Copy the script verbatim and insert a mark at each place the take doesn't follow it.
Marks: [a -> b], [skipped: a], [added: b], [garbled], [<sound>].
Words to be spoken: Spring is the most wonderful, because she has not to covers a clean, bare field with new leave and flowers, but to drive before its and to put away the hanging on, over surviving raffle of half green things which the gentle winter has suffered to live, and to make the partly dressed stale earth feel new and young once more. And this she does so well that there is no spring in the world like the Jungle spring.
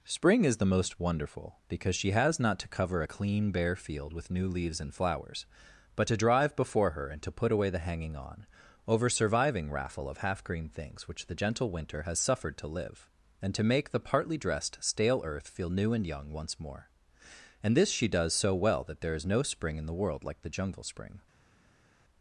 Spring is the most wonderful, because she has not to [covers -> cover] a clean, bare field with new [leave -> leaves] and flowers, but to drive before [its -> her] and to put away the hanging on, over surviving raffle of half green things which the gentle winter has suffered to live, and to make the partly dressed stale earth feel new and young once more. And this she does so well that there is no spring in the world like the Jungle spring.